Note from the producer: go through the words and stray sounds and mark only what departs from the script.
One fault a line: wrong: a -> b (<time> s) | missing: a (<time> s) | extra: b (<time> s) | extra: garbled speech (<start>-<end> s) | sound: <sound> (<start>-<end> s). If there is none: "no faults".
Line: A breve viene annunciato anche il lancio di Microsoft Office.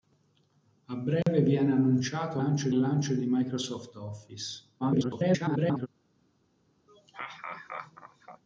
sound: dropout (1.2-1.3 s)
wrong: anche -> lancio (2.4 s)
extra: garbled speech (4.8-5.9 s)
sound: laugh (6.9-8.4 s)